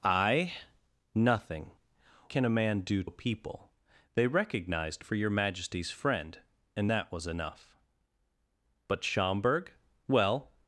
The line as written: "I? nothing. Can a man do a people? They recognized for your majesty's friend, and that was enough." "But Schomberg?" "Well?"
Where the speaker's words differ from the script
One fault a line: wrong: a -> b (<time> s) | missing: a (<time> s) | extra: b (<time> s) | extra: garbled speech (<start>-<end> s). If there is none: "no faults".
no faults